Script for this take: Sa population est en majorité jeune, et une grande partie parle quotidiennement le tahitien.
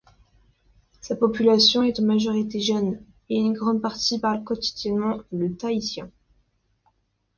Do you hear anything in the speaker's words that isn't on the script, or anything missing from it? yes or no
no